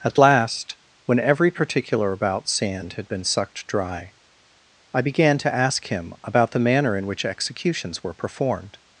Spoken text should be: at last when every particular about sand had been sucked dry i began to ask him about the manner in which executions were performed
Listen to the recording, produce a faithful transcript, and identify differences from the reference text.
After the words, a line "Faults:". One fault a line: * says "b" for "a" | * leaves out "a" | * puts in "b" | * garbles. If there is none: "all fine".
at last when every particular about sand had been sucked dry i began to ask him about the manner in which executions were performed
Faults:
all fine